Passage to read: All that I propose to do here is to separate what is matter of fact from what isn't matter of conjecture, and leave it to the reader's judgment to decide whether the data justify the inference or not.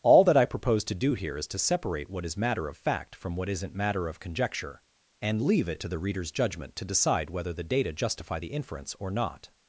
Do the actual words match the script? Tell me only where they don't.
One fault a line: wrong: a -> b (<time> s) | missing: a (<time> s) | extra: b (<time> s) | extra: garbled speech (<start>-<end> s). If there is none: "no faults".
no faults